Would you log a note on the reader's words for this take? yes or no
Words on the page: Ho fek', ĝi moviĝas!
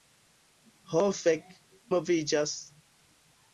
yes